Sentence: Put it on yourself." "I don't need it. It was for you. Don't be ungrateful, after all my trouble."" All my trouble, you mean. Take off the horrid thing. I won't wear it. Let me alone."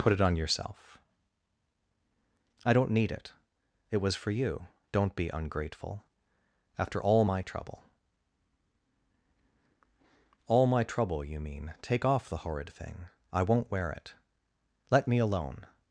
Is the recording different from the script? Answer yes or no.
no